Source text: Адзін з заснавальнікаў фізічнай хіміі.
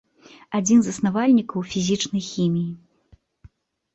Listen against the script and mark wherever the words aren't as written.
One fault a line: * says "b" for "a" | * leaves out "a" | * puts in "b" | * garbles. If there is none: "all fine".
all fine